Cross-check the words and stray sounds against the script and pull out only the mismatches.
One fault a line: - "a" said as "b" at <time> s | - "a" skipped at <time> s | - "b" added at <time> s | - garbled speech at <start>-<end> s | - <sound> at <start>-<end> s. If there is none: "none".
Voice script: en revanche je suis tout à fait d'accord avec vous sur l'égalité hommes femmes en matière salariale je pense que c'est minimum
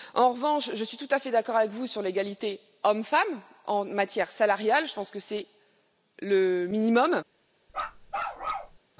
- "le" added at 6.2 s
- bark at 7.7-8.8 s